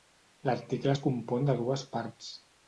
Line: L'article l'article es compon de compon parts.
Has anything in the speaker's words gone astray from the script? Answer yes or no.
yes